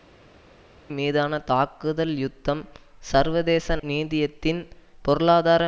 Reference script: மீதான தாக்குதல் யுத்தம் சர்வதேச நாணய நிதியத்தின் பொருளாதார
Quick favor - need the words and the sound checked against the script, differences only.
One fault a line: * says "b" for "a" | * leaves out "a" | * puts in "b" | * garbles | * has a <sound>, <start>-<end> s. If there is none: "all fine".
* leaves out "நாணய"